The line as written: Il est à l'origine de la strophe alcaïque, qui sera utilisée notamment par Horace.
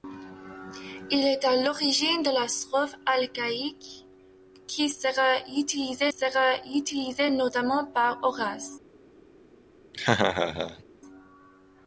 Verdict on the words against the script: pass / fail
fail